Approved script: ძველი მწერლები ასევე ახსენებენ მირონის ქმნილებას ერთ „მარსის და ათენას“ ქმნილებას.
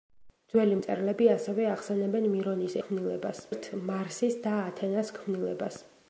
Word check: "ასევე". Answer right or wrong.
right